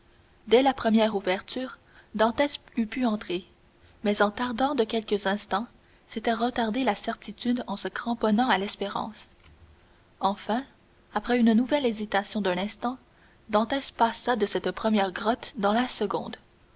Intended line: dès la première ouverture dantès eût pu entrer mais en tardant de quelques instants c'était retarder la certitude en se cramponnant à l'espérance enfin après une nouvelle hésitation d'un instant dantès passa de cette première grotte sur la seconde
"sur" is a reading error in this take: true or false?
true